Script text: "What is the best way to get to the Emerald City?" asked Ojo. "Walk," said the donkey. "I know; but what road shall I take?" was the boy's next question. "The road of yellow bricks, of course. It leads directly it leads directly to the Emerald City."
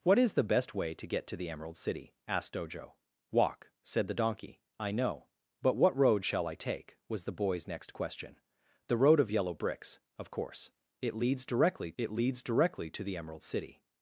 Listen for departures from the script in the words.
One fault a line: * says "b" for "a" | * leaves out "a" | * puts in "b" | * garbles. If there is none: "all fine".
all fine